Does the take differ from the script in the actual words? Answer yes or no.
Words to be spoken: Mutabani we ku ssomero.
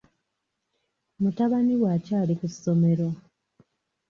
yes